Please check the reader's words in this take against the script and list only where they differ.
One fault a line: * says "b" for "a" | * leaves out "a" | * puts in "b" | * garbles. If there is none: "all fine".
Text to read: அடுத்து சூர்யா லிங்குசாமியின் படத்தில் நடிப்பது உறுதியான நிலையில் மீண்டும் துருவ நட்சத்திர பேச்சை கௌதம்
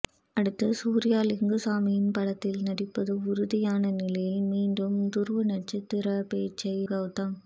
all fine